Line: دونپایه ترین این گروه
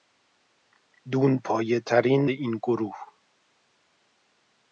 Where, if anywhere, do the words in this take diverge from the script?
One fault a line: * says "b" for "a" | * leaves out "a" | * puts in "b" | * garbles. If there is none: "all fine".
all fine